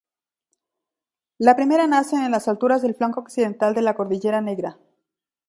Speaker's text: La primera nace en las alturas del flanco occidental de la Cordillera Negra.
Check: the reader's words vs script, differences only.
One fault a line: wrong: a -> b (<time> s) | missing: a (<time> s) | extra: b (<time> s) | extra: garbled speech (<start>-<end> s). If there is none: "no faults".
no faults